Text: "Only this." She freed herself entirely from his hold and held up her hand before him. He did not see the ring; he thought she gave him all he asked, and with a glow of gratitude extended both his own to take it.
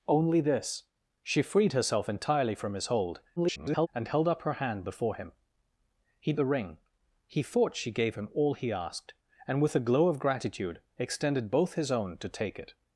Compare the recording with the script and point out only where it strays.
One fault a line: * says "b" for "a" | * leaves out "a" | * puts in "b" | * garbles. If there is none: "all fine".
* garbles
* leaves out "did not see"